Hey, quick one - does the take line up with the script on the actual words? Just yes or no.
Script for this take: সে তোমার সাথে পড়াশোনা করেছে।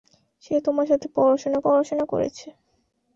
no